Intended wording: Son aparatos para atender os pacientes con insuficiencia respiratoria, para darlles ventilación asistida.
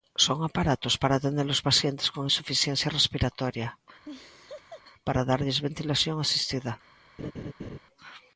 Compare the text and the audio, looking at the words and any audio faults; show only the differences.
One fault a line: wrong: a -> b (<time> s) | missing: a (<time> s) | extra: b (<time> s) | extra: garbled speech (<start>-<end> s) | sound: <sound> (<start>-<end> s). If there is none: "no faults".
sound: laugh (4.0-4.8 s)
sound: laugh (7.2-7.8 s)